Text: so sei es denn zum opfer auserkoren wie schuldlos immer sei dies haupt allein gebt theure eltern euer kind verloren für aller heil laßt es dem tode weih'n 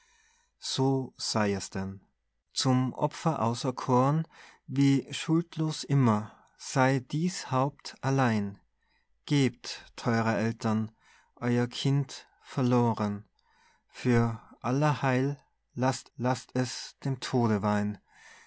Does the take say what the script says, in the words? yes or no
no